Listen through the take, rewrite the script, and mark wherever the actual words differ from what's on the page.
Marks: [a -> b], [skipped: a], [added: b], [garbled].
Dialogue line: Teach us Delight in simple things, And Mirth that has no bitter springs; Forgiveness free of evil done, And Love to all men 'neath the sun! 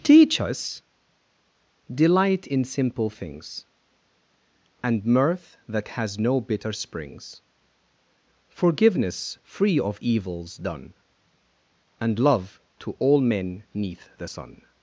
Teach us Delight in simple things, And Mirth that has no bitter springs; Forgiveness free of [evil -> evils] done, And Love to all men 'neath the sun!